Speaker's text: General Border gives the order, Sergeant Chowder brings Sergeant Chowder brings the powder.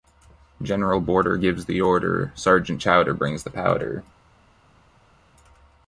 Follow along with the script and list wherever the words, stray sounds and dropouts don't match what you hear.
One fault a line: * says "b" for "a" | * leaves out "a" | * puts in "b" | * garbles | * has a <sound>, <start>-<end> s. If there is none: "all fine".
* leaves out "Sergeant Chowder brings"